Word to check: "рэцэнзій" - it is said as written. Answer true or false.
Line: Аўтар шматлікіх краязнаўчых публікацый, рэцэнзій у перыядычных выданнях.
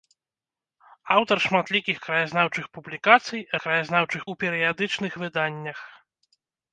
false